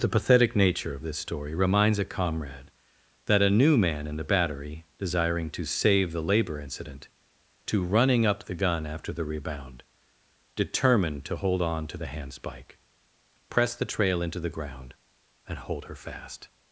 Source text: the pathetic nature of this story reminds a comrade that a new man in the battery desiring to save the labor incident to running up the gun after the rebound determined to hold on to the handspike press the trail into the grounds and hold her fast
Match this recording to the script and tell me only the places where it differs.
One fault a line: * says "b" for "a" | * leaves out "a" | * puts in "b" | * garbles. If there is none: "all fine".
* says "ground" for "grounds"